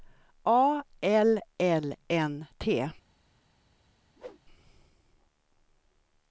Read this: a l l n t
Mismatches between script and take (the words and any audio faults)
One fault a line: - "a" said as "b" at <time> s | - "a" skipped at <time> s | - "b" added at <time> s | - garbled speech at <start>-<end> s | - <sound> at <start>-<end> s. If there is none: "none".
- whoosh at 4.2-4.4 s